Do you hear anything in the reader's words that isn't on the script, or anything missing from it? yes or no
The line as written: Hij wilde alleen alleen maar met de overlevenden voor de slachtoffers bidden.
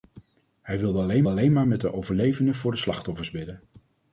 no